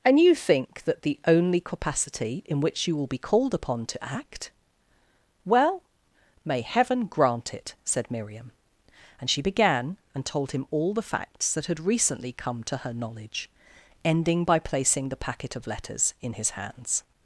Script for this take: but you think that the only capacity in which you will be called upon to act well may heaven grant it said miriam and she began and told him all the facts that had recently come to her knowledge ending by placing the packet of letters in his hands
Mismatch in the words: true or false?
true